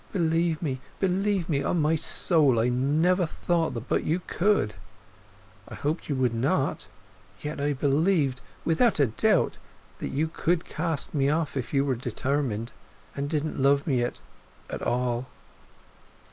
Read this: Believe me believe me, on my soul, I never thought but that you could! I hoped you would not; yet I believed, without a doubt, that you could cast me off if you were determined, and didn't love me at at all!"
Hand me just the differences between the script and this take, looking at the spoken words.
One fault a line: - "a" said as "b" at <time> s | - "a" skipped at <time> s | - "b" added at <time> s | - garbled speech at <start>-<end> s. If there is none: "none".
none